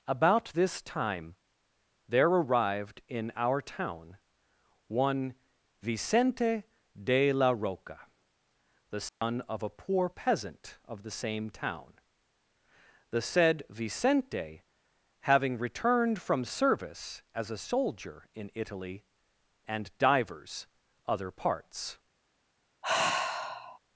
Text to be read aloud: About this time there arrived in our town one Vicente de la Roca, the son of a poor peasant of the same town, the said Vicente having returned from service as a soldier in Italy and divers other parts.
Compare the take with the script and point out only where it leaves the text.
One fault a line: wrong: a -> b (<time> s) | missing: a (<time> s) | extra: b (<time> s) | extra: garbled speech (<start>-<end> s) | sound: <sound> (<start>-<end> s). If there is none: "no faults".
sound: dropout (9.1-9.2 s)
sound: sigh (22.8-23.8 s)